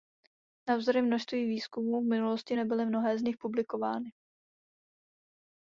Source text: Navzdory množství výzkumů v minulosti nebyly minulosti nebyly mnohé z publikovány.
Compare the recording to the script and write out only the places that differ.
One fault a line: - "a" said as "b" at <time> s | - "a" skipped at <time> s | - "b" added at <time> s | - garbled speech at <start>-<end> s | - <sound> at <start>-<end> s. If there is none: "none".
- "minulosti nebyly" skipped at 2.8 s
- "nich" added at 3.2 s